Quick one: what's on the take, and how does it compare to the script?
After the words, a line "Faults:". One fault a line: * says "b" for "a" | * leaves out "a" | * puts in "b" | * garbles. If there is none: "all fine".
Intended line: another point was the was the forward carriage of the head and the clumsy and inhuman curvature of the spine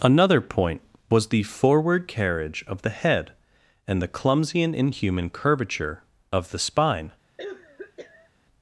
another point was the forward carriage of the head and the clumsy and inhuman curvature of the spine
Faults:
* leaves out "was the"